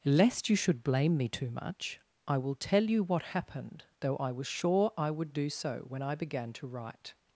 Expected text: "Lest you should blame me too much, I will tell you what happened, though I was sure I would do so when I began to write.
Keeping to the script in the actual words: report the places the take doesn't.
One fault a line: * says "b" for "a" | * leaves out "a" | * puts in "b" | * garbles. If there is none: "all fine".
all fine